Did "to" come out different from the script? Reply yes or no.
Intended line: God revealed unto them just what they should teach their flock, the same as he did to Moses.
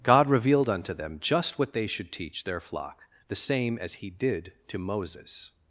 no